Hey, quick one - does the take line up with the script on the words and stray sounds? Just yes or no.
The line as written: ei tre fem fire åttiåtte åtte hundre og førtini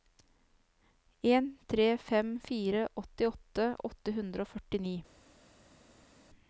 no